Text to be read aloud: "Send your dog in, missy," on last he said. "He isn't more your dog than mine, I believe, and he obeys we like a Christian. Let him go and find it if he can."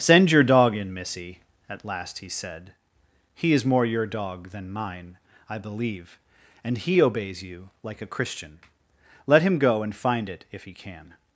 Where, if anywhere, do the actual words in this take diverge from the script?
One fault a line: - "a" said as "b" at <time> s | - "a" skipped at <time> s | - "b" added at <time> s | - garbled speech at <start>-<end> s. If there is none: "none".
- "on" said as "at" at 1.7 s
- "isn't" said as "is" at 3.5 s
- "we" said as "you" at 7.4 s